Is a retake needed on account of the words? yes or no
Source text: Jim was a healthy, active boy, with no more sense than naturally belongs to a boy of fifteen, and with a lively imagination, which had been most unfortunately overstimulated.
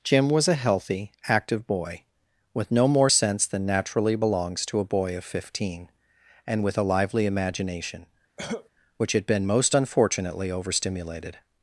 no